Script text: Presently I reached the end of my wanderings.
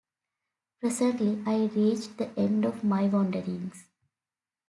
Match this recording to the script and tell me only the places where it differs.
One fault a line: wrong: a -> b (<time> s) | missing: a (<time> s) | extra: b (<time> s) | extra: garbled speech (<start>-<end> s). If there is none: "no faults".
no faults